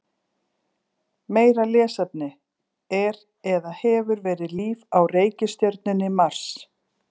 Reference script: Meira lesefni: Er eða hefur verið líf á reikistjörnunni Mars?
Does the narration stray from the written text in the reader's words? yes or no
no